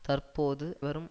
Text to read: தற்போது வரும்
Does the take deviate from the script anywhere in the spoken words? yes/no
no